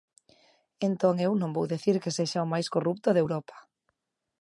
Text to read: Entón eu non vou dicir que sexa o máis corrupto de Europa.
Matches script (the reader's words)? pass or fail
pass